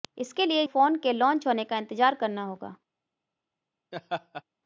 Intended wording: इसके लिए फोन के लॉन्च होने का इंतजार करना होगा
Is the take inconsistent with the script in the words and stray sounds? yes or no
yes